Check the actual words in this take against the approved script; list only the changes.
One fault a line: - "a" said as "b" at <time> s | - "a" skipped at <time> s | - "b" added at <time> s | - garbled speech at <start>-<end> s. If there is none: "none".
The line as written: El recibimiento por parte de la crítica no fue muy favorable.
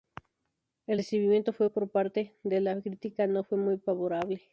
none